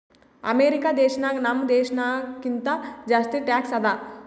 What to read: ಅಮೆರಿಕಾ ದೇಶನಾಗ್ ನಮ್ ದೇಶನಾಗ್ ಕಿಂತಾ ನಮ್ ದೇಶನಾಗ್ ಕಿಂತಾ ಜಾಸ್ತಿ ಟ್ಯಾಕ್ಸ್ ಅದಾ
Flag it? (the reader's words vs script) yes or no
yes